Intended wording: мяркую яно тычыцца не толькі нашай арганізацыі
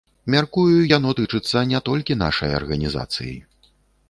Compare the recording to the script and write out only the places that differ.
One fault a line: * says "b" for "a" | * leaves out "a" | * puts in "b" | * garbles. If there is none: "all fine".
all fine